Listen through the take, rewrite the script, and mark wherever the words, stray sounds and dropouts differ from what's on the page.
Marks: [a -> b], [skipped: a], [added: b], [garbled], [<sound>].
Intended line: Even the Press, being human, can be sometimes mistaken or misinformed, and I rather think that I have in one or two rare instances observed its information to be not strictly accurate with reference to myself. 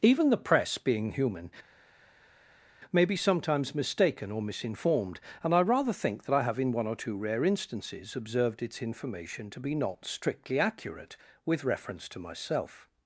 Even the Press, being human, [can -> may] be sometimes mistaken or misinformed, and I rather think that I have in one or two rare instances observed its information to be not strictly accurate with reference to myself.